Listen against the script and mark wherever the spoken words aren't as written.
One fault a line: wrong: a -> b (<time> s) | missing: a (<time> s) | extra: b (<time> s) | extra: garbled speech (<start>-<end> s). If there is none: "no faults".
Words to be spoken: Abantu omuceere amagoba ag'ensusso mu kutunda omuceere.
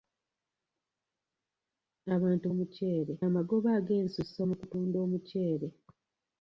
no faults